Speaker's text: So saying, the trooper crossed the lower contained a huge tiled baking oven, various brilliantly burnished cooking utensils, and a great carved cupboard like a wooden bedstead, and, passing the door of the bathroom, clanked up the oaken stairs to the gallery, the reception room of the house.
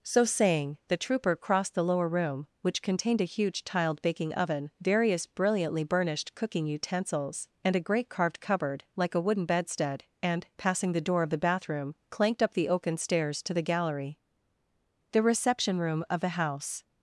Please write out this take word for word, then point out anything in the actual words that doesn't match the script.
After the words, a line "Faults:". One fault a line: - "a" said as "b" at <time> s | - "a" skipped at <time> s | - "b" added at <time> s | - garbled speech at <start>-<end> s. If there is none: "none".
So saying, the trooper crossed the lower room, which contained a huge tiled baking oven, various brilliantly burnished cooking utensils, and a great carved cupboard like a wooden bedstead, and, passing the door of the bathroom, clanked up the oaken stairs to the gallery, the reception room of the house.
Faults:
- "room which" added at 2.1 s